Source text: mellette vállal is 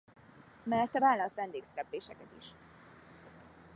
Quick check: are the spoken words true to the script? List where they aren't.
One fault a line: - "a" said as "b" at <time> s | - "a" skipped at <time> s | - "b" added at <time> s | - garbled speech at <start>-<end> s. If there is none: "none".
- "vendégszerepléseket" added at 1.4 s